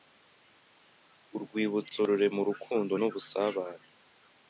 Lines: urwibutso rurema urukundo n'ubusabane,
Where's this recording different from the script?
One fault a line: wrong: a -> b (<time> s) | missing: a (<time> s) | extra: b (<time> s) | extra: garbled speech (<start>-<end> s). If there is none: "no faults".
no faults